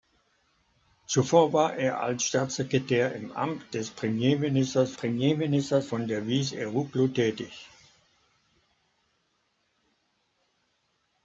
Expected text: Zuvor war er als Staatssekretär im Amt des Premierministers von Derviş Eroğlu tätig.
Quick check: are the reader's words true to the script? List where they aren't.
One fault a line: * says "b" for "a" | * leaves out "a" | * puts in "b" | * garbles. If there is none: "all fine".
* puts in "Premierministers"